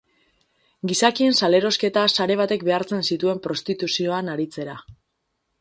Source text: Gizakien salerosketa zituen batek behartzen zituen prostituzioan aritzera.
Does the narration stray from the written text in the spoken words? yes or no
yes